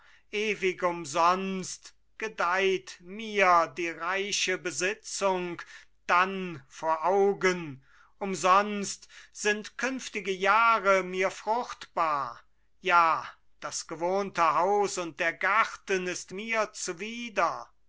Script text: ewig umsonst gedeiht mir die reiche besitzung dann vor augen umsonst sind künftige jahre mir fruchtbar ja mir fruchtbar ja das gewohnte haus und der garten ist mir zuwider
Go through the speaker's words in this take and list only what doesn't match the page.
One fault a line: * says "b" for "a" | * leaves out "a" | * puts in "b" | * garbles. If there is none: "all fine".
* leaves out "mir fruchtbar ja"